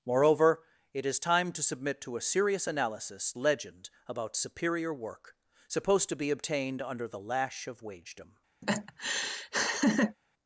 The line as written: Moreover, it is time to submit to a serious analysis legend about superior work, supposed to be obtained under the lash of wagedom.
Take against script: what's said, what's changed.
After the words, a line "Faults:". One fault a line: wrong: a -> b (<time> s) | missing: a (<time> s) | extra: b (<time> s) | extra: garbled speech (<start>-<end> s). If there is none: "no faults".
Moreover, it is time to submit to a serious analysis legend about superior work, supposed to be obtained under the lash of wagedom.
Faults:
no faults